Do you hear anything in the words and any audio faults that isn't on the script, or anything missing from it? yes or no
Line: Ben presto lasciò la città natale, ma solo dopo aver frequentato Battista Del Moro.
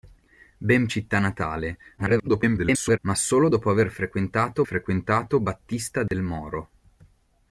yes